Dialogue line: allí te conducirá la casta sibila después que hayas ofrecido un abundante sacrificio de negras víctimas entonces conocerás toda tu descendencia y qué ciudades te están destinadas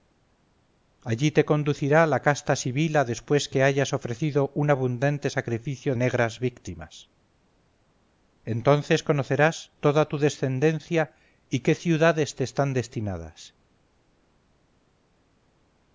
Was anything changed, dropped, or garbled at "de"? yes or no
yes